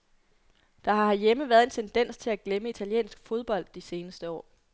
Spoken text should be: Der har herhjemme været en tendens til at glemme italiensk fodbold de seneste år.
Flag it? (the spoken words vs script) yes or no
no